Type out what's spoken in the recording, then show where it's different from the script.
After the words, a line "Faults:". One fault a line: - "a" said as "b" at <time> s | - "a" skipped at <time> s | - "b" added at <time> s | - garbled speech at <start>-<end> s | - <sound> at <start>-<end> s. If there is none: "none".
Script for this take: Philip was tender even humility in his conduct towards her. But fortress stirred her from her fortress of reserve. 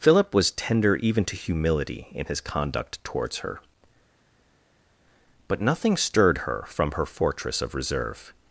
Philip was tender even to humility in his conduct towards her. But nothing stirred her from her fortress of reserve.
Faults:
- "to" added at 1.2 s
- "fortress" said as "nothing" at 5.6 s